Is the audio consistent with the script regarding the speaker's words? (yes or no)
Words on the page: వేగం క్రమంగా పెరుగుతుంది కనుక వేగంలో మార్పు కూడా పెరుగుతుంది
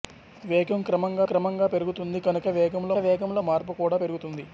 no